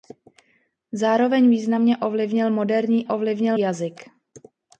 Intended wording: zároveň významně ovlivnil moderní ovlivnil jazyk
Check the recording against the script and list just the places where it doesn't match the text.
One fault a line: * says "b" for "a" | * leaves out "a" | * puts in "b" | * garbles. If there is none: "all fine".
all fine